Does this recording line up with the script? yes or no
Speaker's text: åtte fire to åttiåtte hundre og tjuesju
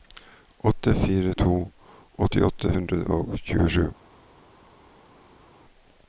yes